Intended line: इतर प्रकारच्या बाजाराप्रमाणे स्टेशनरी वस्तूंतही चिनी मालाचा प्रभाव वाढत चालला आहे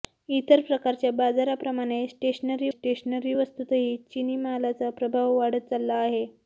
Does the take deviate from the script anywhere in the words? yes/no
yes